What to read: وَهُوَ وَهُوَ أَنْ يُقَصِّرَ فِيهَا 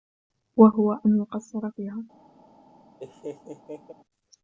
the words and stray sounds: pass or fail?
fail